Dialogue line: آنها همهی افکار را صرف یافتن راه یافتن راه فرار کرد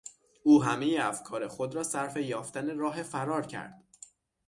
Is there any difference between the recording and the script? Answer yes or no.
yes